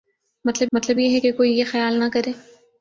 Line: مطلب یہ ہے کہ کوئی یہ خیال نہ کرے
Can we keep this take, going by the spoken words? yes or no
no